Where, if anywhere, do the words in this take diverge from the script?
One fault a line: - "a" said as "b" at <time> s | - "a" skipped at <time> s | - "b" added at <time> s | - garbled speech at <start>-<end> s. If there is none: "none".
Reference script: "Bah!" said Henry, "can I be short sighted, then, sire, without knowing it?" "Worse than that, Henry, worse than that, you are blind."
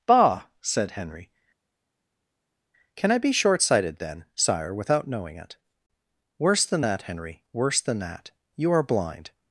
none